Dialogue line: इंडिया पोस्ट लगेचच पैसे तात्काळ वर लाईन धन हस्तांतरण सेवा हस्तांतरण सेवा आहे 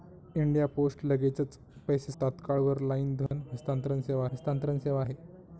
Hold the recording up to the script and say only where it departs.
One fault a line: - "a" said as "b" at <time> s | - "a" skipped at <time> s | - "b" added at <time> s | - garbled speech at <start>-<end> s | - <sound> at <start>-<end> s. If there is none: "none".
- dropout at 3.3-3.3 s